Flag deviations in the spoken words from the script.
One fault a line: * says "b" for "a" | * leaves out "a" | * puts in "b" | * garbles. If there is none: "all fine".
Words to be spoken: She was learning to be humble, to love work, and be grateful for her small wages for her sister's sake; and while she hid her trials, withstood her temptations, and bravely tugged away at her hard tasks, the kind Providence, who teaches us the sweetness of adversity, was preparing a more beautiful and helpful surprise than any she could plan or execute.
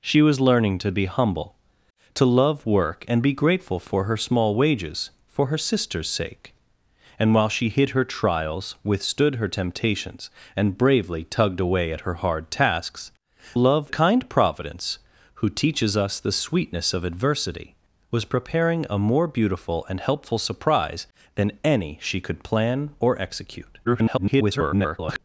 * says "love" for "the"
* garbles